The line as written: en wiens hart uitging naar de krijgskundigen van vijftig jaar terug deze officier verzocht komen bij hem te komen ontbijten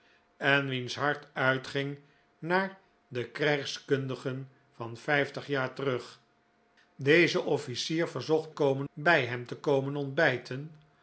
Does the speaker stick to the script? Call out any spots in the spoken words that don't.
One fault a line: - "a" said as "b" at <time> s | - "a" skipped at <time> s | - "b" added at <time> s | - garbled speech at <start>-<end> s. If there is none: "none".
none